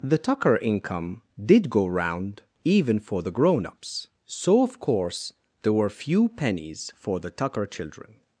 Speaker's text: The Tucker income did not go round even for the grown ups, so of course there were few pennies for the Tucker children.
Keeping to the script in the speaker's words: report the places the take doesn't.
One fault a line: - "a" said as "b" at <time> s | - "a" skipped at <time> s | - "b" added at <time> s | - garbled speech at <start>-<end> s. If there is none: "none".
- "not" skipped at 1.7 s